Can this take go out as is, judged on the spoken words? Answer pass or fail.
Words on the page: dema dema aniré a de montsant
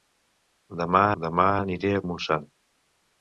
pass